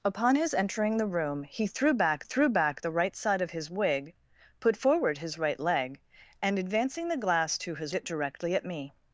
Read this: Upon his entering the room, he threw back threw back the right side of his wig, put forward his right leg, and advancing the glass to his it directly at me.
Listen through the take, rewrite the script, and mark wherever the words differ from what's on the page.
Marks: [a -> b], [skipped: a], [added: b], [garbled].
Upon his entering the room, he threw back threw back the right side of his wig, put forward his right leg, and advancing the glass to his it directly at me.